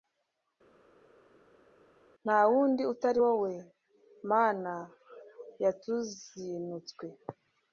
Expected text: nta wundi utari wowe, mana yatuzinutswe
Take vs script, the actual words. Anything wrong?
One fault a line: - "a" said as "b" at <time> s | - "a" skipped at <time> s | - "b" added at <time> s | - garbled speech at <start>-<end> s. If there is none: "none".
none